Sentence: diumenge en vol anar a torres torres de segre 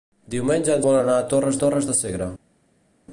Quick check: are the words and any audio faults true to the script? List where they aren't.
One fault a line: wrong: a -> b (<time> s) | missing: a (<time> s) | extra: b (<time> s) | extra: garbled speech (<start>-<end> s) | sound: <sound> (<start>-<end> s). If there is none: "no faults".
no faults